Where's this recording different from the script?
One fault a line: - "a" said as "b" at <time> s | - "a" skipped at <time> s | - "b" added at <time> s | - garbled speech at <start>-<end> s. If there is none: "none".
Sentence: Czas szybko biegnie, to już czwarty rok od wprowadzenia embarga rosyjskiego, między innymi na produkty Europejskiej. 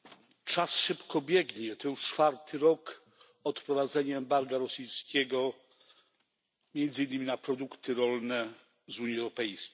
- "rolne z Unii" added at 7.9 s